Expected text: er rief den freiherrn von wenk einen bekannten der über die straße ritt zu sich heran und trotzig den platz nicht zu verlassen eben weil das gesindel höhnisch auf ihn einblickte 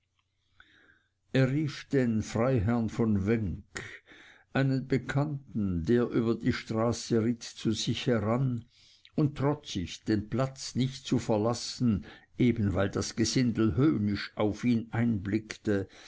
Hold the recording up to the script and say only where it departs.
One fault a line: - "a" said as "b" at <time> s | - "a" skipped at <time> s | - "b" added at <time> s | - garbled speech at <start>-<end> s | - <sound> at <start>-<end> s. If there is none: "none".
none